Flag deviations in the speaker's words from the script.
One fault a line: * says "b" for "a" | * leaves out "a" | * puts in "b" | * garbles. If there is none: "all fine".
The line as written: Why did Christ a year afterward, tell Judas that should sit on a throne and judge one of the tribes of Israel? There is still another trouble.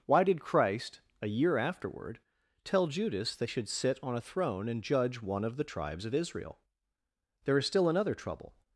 all fine